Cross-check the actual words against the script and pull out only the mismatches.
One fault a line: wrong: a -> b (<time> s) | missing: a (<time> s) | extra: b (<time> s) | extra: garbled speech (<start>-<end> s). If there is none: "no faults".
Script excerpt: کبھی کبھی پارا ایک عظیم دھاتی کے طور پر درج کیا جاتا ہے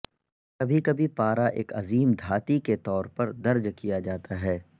no faults